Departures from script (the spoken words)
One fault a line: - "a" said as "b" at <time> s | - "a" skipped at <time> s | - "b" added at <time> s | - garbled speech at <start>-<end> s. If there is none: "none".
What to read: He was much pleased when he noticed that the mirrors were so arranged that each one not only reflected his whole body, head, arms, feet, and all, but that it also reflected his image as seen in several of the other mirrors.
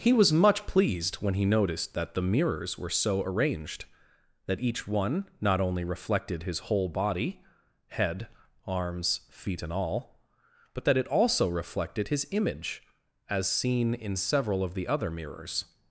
none